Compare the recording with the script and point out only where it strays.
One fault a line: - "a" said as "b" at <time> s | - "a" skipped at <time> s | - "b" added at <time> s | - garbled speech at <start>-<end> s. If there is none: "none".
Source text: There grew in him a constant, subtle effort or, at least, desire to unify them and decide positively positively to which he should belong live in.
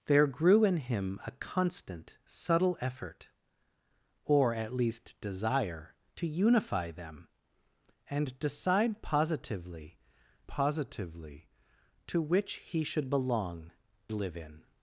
none